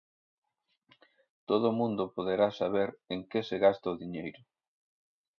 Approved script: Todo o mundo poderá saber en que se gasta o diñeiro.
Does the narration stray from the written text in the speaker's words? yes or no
no